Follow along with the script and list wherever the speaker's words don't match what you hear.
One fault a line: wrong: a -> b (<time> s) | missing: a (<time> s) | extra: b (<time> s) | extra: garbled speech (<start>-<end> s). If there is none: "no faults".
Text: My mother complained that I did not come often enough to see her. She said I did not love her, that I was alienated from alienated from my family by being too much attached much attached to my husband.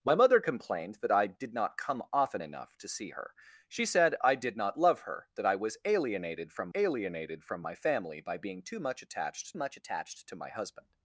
no faults